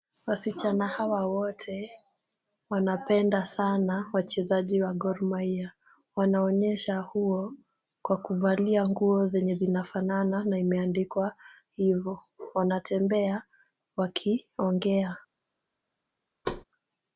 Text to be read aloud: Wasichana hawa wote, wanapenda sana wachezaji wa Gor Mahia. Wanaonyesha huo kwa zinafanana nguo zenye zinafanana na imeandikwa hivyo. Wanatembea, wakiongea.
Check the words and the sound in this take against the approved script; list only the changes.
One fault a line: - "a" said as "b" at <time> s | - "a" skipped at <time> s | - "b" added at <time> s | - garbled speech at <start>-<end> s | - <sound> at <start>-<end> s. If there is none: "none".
- "zinafanana" said as "kuvalia" at 8.2 s
- thud at 16.4-16.6 s